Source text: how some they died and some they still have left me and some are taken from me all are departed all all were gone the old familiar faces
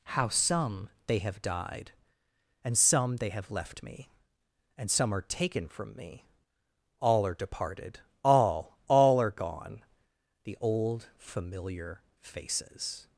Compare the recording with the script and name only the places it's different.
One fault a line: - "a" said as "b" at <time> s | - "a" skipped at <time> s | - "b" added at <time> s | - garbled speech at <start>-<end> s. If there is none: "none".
- "have" added at 1.2 s
- "still" skipped at 3.3 s
- "were" said as "are" at 9.2 s